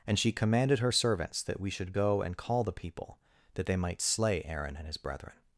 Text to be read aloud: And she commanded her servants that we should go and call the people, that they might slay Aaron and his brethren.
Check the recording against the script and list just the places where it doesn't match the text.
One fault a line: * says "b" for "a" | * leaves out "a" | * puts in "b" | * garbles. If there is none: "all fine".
all fine